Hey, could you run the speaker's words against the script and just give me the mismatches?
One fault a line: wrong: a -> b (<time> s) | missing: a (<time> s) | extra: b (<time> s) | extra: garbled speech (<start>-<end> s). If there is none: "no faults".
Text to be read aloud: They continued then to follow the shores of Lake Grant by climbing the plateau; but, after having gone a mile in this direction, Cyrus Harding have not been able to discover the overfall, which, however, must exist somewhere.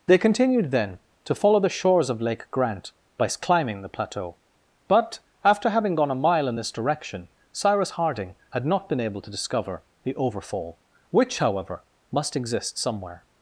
wrong: have -> had (8.5 s)